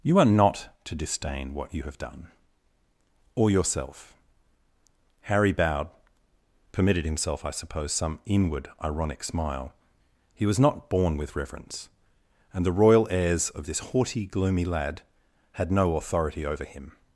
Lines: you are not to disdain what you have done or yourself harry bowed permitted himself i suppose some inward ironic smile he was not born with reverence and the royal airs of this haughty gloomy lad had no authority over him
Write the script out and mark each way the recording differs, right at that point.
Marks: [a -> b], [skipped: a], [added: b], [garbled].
you are not to disdain what you have done or yourself harry bowed permitted himself i suppose some inward ironic smile he was not born with reverence and the royal airs of this haughty gloomy lad had no authority over him